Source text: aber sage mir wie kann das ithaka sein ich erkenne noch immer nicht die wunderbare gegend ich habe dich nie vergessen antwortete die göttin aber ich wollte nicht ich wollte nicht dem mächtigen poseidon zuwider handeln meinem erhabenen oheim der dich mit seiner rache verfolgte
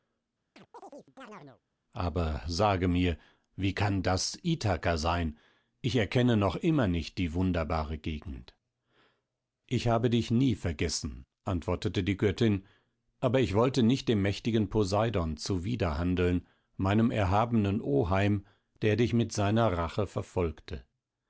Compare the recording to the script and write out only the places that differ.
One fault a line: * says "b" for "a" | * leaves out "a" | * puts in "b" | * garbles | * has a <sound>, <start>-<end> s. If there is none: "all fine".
* has a chirp, 0.6-1.6 s
* leaves out "ich wollte nicht"